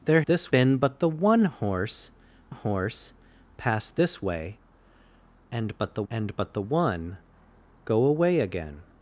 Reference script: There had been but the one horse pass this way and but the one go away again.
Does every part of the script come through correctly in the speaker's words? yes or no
no